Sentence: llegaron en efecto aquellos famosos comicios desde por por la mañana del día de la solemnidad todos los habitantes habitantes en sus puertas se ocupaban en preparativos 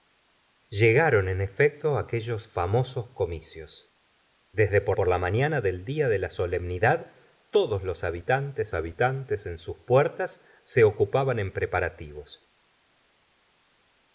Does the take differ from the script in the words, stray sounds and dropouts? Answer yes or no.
no